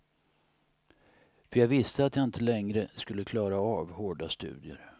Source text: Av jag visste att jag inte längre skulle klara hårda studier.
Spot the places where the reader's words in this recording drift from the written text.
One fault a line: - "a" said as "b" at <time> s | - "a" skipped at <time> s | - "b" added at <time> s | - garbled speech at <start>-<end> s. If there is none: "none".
- "Av" said as "För" at 1.5 s
- "av" added at 3.6 s